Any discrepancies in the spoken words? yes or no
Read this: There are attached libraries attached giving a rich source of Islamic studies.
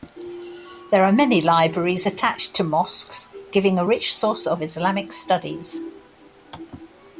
yes